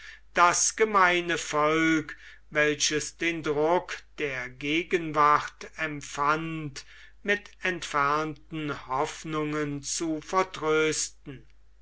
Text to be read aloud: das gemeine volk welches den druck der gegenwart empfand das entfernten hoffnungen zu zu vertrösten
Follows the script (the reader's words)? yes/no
no